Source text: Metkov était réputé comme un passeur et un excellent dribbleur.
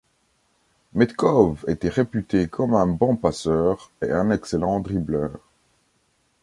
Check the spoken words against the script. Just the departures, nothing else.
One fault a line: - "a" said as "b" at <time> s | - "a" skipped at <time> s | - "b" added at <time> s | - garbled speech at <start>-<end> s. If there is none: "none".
- "bon" added at 2.9 s